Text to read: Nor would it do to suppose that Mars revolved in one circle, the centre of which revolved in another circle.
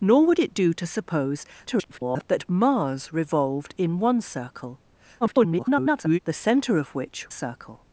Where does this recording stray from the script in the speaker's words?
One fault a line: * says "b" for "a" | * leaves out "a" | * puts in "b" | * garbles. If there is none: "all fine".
* garbles
* garbles
* leaves out "revolved in another"